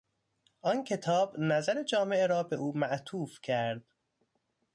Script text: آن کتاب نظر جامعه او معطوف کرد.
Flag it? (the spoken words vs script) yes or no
yes